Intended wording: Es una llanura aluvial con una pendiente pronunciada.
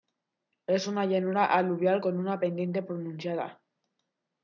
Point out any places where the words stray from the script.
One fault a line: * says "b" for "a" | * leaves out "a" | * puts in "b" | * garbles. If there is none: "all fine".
all fine